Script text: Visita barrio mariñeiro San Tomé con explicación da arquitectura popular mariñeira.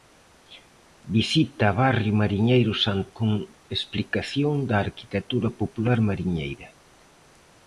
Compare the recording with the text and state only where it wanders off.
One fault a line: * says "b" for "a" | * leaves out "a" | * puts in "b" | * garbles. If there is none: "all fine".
* leaves out "Tomé"